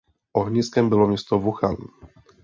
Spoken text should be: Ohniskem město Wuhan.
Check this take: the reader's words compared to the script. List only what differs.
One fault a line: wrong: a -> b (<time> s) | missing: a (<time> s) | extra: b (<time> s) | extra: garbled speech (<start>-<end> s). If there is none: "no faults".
extra: bylo (0.9 s)